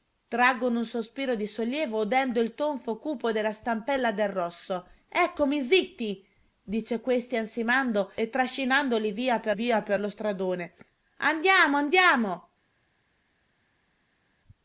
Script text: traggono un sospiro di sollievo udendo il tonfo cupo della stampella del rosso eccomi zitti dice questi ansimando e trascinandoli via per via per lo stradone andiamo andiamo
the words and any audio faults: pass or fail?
pass